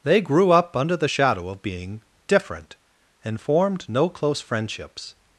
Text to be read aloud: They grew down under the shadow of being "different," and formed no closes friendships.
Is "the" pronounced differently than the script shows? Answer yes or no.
no